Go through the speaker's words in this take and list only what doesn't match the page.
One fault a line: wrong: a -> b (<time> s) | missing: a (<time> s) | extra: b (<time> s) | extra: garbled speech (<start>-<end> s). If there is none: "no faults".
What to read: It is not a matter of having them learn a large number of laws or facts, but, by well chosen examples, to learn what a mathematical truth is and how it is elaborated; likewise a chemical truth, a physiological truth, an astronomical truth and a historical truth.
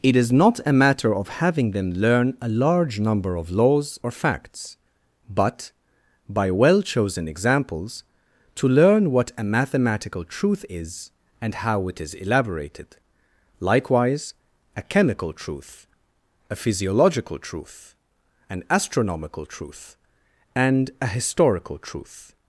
no faults